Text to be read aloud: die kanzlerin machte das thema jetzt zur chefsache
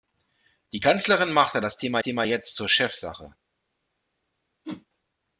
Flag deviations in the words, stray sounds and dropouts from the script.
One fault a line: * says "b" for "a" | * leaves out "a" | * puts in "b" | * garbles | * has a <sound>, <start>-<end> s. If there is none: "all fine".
* puts in "thema"
* has a whoosh, 4.6-4.9 s